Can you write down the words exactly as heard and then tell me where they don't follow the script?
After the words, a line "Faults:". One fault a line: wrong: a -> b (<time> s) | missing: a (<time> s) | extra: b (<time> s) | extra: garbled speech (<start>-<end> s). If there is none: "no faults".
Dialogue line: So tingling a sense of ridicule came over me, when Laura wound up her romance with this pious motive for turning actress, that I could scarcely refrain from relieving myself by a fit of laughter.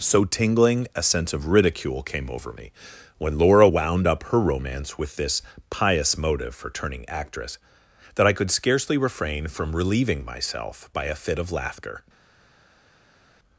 So tingling a sense of ridicule came over me, when Laura wound up her romance with this pious motive for turning actress, that I could scarcely refrain from relieving myself by a fit of laughter.
Faults:
no faults